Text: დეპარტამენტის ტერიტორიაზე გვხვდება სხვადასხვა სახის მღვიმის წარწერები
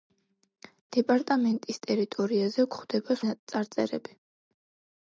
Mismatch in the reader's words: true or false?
true